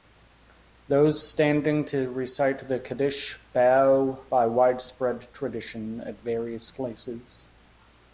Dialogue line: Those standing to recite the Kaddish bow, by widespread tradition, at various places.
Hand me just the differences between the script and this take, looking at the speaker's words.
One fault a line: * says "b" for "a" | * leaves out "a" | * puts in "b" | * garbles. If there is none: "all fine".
all fine